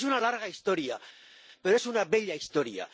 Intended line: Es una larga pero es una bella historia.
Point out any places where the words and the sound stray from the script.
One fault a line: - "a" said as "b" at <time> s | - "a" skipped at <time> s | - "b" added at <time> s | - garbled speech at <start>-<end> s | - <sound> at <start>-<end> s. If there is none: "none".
- "historia" added at 0.5 s